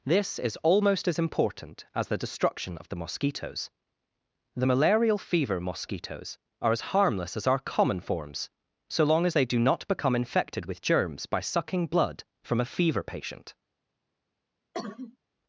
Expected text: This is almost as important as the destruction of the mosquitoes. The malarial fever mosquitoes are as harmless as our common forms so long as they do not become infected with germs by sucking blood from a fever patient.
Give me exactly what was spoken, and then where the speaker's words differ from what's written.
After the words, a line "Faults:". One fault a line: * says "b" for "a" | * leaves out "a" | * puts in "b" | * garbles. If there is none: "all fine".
This is almost as important as the destruction of the mosquitoes. The malarial fever mosquitoes are as harmless as our common forms so long as they do not become infected with germs by sucking blood from a fever patient.
Faults:
all fine